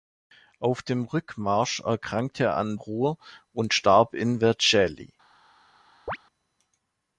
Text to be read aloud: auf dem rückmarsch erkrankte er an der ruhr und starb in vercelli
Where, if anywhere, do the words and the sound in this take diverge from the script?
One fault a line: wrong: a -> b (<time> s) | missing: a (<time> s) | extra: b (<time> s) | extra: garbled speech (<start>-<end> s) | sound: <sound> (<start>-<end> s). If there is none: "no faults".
missing: der (2.8 s)
sound: chirp (6.1-6.2 s)